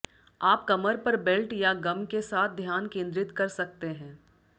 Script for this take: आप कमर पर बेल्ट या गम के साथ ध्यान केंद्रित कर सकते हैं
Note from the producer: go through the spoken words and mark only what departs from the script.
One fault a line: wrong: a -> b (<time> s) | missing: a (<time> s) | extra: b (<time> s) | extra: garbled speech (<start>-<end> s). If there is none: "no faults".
no faults